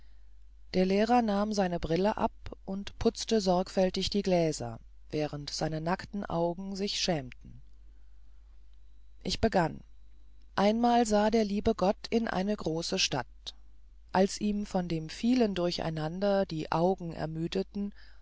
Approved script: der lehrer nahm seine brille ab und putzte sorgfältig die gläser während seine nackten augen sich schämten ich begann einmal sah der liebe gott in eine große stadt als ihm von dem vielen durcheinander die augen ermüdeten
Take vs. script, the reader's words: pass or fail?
pass